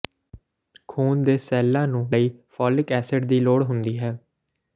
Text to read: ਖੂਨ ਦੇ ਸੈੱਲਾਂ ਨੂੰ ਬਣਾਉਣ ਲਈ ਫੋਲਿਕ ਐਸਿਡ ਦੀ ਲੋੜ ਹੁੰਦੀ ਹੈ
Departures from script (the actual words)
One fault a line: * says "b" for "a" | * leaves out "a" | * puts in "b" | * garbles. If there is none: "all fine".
* leaves out "ਬਣਾਉਣ"